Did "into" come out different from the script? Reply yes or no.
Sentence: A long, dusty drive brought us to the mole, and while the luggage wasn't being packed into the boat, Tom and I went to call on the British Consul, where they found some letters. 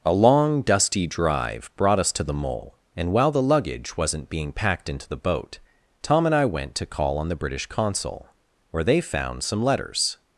no